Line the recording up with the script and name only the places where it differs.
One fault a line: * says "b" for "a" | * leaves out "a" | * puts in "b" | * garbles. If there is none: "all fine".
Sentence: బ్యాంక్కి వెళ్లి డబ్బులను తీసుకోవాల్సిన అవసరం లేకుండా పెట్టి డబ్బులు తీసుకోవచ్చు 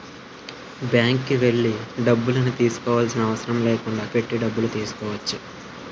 all fine